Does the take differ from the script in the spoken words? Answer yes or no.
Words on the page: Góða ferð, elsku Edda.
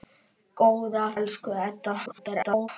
yes